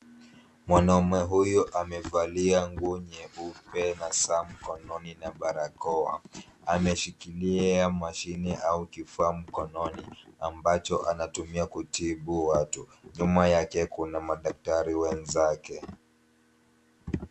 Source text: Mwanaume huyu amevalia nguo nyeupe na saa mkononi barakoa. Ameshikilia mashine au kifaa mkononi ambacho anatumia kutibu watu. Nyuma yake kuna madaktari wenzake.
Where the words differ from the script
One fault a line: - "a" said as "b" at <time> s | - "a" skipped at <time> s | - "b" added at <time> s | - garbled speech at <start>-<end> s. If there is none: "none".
- "na" added at 5.2 s